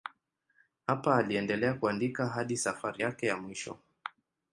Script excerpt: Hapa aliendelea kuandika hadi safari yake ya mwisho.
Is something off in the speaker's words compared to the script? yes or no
no